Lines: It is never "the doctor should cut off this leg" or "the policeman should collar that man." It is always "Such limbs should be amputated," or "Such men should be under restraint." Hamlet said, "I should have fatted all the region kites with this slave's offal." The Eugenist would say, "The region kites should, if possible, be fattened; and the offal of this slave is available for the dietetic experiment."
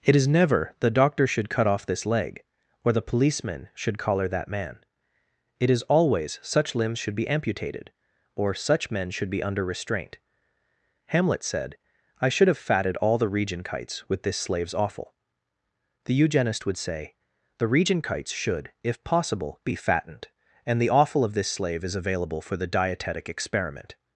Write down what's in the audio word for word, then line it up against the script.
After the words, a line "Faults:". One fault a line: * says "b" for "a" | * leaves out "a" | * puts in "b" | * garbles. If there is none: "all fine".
It is never "the doctor should cut off this leg" or "the policeman should collar that man." It is always "Such limbs should be amputated," or "Such men should be under restraint." Hamlet said, "I should have fatted all the region kites with this slave's offal." The Eugenist would say, "The region kites should, if possible, be fattened; and the offal of this slave is available for the dietetic experiment."
Faults:
all fine